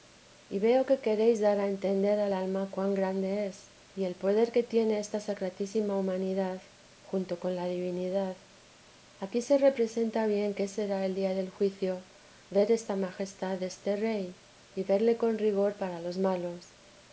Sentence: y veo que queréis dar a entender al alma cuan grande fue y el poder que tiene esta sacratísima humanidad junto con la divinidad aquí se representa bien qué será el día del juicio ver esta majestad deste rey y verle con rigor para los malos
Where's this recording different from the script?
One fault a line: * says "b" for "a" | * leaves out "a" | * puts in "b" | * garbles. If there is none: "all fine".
* says "es" for "fue"